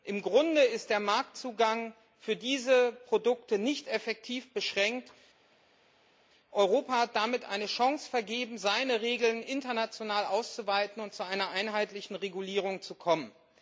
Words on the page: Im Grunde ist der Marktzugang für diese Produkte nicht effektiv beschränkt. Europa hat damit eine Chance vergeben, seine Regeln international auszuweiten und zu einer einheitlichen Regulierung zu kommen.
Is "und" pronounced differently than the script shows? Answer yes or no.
no